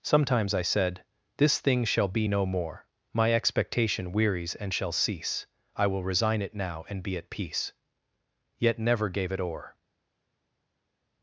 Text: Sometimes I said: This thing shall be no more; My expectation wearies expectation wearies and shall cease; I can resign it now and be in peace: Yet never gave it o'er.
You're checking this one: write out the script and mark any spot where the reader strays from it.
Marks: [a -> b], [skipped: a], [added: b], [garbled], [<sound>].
Sometimes I said: This thing shall be no more; My expectation wearies [skipped: expectation wearies] and shall cease; I [can -> will] resign it now and be [in -> at] peace: Yet never gave it o'er.